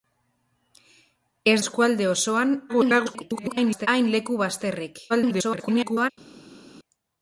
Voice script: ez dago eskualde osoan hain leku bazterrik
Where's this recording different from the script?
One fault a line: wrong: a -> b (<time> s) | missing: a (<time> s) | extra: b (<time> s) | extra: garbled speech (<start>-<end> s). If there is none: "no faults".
missing: dago (1.6 s)
extra: garbled speech (2.7-3.9 s)
extra: garbled speech (5.1-6.1 s)